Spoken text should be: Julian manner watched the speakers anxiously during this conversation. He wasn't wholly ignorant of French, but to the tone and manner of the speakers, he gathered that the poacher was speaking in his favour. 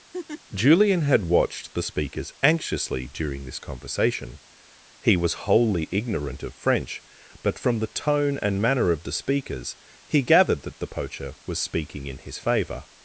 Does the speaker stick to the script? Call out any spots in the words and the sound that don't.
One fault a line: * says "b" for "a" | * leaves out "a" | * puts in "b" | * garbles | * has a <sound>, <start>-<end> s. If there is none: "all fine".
* has a laugh, 0.1-0.4 s
* says "had" for "manner"
* says "was" for "wasn't"
* says "from" for "to"